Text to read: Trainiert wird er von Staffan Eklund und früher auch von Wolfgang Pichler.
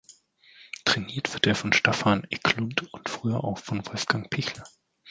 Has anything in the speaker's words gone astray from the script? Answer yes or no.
no